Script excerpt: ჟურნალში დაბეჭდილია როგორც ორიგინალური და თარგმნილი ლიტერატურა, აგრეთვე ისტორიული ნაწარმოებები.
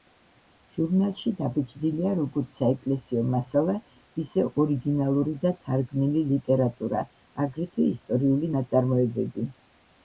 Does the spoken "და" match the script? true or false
true